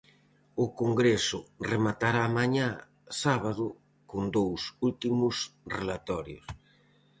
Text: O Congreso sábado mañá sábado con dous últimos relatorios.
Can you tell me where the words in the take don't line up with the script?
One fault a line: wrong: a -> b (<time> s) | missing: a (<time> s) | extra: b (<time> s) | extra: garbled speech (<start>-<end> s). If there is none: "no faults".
wrong: sábado -> rematará (1.7 s)